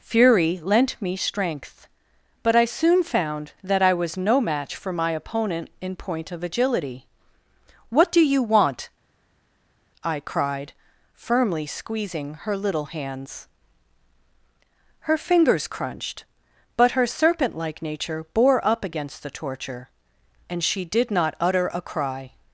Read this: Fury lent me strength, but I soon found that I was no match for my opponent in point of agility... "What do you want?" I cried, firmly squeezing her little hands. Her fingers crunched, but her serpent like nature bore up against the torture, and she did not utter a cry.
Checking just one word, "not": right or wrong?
right